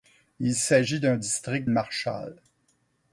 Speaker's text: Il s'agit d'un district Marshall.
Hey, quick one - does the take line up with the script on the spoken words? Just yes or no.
yes